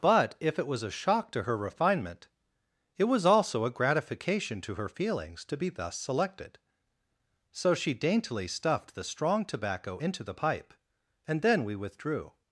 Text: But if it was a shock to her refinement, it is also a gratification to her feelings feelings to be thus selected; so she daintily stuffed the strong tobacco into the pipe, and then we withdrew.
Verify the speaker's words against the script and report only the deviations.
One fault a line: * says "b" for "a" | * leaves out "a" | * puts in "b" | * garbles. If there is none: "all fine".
* says "was" for "is"
* leaves out "feelings"